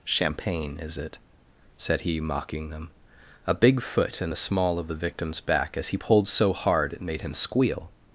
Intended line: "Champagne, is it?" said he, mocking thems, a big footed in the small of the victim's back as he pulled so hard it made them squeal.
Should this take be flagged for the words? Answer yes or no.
yes